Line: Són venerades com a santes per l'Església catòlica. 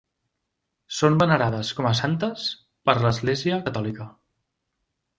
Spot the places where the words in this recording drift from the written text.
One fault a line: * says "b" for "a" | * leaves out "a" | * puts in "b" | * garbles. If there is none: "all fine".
all fine